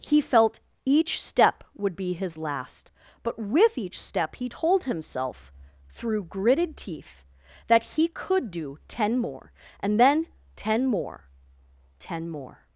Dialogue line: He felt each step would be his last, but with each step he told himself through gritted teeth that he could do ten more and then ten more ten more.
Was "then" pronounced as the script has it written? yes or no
yes